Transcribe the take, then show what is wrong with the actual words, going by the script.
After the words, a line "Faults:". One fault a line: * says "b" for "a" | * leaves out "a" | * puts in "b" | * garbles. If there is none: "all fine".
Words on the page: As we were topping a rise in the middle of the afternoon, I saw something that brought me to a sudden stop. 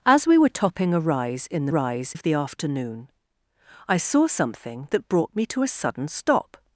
As we were topping a rise in the rise of the afternoon, I saw something that brought me to a sudden stop.
Faults:
* says "rise" for "middle"